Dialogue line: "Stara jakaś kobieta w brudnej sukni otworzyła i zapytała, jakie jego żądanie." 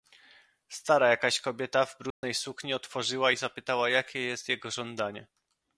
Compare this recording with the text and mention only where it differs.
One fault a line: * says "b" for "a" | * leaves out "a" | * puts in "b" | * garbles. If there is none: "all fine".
* puts in "jest"